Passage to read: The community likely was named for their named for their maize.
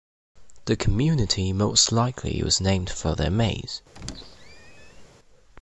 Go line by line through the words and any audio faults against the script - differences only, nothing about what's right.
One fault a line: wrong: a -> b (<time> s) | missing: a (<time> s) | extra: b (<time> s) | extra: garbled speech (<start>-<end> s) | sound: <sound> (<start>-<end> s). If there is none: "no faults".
extra: most (1.5 s)
missing: named for their (3.3 s)
sound: squeak (3.9-5.1 s)